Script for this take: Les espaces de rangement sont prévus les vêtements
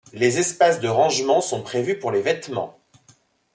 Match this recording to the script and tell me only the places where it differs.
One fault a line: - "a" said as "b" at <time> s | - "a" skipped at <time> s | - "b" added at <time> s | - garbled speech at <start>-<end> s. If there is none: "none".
- "pour" added at 2.0 s